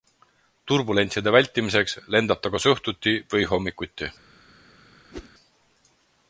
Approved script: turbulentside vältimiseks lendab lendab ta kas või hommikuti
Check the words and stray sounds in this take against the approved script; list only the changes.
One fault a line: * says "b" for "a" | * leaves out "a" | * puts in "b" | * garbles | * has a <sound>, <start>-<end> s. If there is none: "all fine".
* leaves out "lendab"
* puts in "õhtuti"
* has a whoosh, 5.1-5.3 s